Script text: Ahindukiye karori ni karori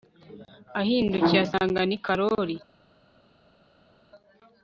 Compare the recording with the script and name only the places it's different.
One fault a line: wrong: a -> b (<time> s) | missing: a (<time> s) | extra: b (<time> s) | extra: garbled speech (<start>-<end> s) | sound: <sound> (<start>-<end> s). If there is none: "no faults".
wrong: karori -> asanga (1.4 s)